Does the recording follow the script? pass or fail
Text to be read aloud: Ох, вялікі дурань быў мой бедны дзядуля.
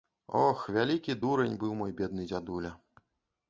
pass